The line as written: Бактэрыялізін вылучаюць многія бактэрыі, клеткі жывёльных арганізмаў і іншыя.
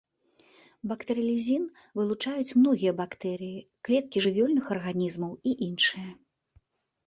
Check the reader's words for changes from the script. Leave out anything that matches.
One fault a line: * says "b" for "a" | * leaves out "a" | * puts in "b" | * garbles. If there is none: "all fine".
all fine